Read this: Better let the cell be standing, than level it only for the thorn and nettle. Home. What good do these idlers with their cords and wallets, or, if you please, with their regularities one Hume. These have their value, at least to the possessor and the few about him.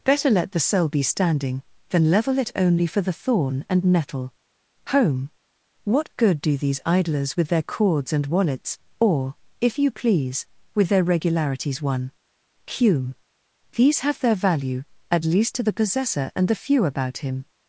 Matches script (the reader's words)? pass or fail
pass